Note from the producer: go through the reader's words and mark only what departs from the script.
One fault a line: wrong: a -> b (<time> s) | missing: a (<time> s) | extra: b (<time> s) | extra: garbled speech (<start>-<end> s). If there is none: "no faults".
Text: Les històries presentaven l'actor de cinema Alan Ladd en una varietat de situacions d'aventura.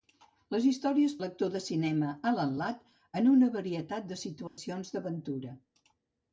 missing: presentaven (1.1 s)